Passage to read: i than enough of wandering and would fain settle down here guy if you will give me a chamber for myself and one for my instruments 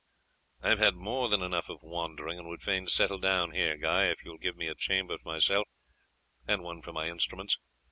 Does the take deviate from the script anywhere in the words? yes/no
yes